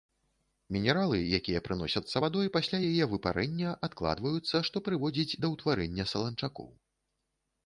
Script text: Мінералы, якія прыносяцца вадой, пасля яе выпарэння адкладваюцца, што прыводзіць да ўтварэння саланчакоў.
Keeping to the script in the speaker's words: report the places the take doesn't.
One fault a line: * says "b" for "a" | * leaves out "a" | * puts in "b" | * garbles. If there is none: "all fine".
all fine